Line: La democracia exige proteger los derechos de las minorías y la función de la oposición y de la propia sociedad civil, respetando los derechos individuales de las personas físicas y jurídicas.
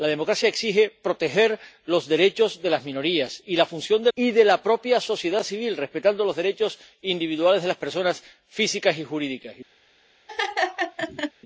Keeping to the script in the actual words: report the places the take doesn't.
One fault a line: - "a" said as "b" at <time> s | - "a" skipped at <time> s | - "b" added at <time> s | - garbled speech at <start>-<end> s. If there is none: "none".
- "la oposición" skipped at 4.1 s